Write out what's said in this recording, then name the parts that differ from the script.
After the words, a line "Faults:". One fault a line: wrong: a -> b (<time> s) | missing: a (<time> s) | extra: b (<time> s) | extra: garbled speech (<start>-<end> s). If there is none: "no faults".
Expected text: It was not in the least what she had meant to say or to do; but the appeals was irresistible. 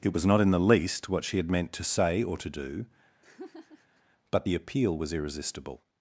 It was not in the least what she had meant to say or to do; but the appeal was irresistible.
Faults:
wrong: appeals -> appeal (4.5 s)